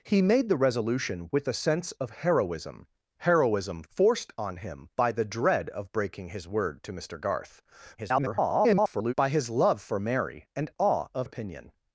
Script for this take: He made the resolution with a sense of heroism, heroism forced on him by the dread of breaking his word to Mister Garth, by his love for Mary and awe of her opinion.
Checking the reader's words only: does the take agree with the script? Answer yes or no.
no